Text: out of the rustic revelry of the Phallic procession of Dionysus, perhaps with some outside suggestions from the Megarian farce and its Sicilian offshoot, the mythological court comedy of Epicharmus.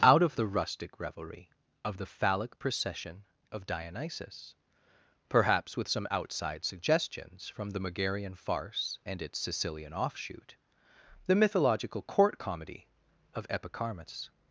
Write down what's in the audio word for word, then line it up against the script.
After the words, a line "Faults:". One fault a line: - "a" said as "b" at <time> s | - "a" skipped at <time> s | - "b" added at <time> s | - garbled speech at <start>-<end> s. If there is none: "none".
out of the rustic revelry of the Phallic procession of Dionysus, perhaps with some outside suggestions from the Megarian farce and its Sicilian offshoot, the mythological court comedy of Epicharmus.
Faults:
none